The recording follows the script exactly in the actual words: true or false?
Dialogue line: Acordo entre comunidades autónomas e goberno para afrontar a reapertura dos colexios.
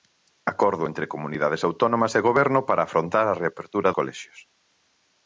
false